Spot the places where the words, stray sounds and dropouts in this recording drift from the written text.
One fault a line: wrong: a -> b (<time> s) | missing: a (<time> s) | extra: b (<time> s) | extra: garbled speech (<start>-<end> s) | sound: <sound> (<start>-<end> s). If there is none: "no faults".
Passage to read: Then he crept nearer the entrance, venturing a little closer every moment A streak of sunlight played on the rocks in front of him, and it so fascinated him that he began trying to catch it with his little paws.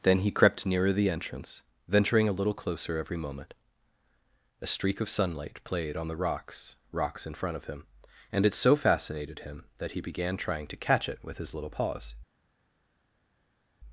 extra: rocks (6.9 s)